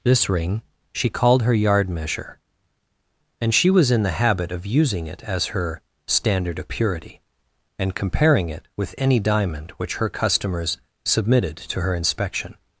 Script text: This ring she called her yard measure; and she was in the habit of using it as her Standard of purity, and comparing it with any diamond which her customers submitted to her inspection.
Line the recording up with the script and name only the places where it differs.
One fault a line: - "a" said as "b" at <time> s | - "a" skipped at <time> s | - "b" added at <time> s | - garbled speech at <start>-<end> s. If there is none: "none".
none